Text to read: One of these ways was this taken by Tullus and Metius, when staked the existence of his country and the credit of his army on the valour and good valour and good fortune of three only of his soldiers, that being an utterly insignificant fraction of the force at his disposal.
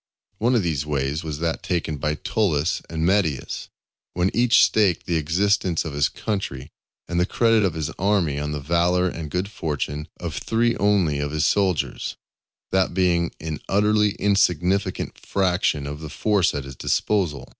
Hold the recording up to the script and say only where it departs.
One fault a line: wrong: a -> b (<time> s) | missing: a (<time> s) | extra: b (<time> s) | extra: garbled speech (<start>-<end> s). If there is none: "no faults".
wrong: this -> that (1.4 s)
extra: each (4.3 s)
missing: valour and good (9.5 s)